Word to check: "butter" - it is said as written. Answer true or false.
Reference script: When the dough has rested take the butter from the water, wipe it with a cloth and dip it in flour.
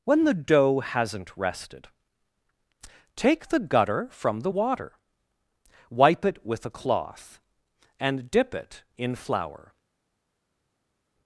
false